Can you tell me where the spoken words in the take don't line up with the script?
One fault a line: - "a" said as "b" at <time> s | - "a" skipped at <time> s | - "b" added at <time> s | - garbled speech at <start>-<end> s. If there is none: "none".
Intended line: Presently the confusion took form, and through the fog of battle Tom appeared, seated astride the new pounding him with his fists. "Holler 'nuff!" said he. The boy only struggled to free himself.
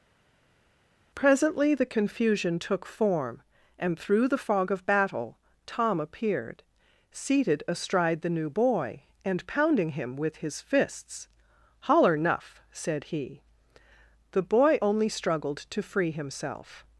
- "boy and" added at 8.5 s